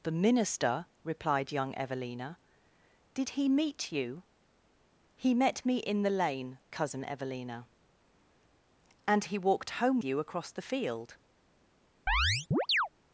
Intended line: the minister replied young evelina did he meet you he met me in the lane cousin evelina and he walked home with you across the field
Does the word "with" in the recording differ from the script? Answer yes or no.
yes